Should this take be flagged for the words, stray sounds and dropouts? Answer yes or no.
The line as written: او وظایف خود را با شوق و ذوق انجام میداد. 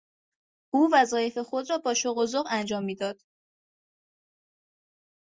no